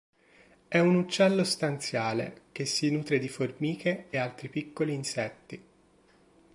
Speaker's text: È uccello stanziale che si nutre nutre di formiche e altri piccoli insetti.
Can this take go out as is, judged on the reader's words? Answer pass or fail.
fail